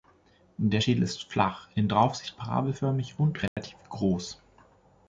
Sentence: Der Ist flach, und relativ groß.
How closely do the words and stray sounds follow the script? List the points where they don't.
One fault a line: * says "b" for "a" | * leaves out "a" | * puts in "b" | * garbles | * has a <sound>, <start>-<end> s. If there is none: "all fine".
* puts in "Schädel"
* puts in "in Draufsicht parabelförmig"
* has a dropout, 3.5-3.6 s